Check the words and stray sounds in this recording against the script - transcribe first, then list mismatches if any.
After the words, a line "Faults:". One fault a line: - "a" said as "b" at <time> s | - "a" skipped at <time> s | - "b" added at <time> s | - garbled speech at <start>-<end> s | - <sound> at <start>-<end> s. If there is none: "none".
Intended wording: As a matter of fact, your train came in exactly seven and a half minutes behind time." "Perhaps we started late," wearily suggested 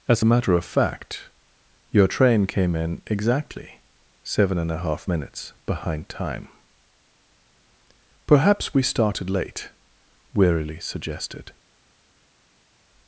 As a matter of fact, your train came in exactly seven and a half minutes behind time." "Perhaps we started late," wearily suggested
Faults:
none